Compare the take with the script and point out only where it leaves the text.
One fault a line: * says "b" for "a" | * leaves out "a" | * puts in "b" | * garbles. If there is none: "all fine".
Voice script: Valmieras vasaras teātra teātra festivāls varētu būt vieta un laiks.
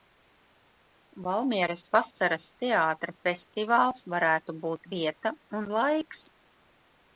* leaves out "teātra"